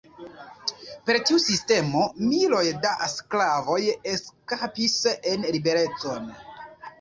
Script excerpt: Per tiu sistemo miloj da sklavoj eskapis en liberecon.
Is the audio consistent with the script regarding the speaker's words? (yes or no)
yes